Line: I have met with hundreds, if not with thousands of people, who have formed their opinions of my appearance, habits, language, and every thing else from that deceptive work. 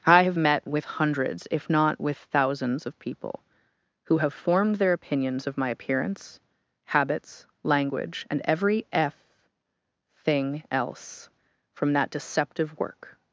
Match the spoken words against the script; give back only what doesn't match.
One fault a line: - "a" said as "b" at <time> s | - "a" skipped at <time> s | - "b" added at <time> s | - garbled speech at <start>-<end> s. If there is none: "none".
- "f" added at 8.9 s